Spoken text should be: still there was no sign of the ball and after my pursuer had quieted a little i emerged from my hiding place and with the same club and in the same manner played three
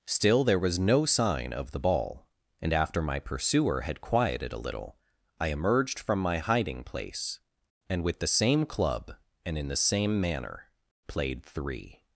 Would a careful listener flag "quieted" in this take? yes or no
no